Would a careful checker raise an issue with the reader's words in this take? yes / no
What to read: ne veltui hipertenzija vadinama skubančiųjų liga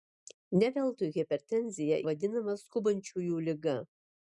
no